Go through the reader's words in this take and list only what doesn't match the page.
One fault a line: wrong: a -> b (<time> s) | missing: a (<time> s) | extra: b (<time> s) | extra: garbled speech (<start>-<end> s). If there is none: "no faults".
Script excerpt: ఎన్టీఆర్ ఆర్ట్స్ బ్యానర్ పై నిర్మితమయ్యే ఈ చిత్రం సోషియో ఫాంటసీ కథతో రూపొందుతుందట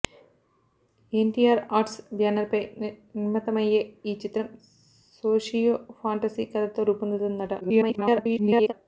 extra: garbled speech (7.6-8.7 s)